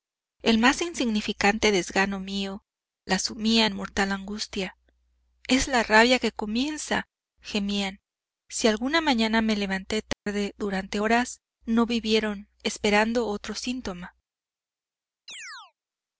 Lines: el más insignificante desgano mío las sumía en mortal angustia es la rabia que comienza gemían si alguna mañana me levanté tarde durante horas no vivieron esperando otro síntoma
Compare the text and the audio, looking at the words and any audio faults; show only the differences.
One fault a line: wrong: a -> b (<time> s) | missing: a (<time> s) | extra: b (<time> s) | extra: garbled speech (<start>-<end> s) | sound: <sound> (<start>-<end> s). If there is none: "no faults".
sound: dropout (10.1-10.3 s)
sound: chirp (15.3-15.7 s)